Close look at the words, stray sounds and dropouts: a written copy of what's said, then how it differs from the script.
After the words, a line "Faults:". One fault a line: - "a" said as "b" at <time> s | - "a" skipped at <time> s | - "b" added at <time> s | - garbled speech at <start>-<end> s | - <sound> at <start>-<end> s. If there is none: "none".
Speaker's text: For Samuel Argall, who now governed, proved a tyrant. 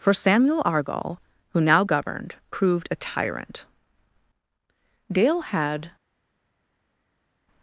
For Samuel Argall, who now governed, proved a tyrant. Dale had
Faults:
- "Dale had" added at 5.1 s